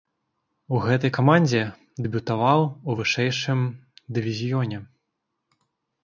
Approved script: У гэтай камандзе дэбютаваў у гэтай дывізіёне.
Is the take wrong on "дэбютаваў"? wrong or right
right